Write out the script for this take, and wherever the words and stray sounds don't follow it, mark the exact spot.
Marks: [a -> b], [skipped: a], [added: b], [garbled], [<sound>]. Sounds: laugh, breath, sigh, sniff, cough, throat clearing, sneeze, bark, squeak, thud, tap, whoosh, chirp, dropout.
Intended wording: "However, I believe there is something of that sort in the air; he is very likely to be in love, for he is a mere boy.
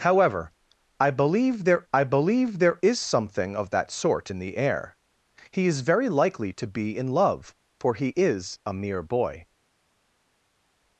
"However, I believe there [added: I believe there] is something of that sort in the air; he is very likely to be in love, for he is a mere boy.